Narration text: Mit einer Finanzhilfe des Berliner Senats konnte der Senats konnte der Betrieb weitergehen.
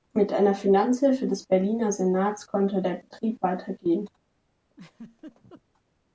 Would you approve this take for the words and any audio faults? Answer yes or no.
no